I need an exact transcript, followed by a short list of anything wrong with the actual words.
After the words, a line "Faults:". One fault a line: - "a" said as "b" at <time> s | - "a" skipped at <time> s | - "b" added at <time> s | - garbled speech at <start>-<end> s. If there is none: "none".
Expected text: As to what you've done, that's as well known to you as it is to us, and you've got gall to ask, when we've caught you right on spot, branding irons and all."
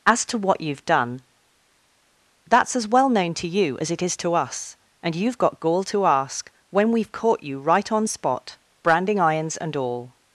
As to what you've done, that's as well known to you as it is to us, and you've got gall to ask, when we've caught you right on spot, branding irons and all."
Faults:
none